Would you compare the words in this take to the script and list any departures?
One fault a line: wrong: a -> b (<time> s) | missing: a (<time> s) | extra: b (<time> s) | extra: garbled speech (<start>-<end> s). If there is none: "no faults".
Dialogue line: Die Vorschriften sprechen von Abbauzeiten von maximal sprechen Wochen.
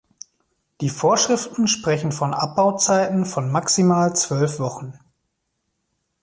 wrong: sprechen -> zwölf (4.2 s)